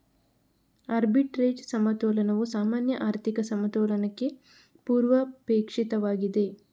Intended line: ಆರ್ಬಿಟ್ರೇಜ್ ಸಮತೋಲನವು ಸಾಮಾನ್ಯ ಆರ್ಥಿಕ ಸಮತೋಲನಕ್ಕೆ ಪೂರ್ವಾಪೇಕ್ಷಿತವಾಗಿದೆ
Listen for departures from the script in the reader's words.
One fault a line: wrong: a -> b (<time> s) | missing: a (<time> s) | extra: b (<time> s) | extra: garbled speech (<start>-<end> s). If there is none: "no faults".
no faults